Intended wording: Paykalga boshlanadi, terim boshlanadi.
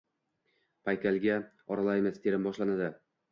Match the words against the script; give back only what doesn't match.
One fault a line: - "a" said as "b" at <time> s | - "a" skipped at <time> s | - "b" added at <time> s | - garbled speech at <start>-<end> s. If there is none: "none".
- "boshlanadi" said as "oralaymiz" at 1.8 s